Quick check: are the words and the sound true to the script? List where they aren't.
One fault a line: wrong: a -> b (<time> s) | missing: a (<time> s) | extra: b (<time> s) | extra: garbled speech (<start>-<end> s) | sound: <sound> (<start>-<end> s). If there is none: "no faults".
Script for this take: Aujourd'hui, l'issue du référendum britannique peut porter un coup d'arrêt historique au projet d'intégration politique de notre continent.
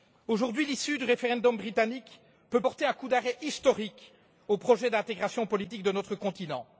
no faults